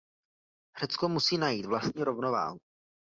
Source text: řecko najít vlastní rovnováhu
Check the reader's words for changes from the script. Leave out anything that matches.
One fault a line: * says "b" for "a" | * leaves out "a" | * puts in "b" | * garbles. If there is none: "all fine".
* puts in "musí"